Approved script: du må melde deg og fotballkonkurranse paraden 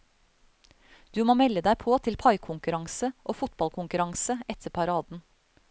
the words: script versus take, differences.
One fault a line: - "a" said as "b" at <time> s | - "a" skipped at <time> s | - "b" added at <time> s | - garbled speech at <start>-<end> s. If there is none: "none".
- "på til paikonkurranse" added at 1.8 s
- "etter" added at 4.5 s